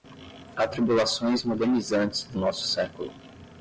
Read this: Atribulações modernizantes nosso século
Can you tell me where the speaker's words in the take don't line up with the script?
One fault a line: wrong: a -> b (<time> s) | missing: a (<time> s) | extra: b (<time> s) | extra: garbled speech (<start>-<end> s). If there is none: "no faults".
extra: do (2.2 s)